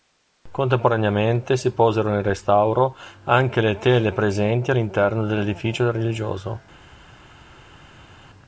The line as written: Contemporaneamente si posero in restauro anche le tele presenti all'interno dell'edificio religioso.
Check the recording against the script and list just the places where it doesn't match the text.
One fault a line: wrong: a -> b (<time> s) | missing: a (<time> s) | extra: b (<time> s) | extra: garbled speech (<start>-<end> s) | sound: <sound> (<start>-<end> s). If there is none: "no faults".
no faults